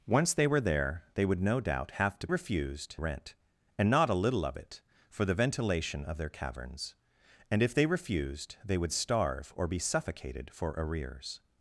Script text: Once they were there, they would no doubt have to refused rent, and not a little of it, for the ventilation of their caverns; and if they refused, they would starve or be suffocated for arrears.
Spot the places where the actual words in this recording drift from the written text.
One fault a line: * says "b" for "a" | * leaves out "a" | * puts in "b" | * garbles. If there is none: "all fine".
all fine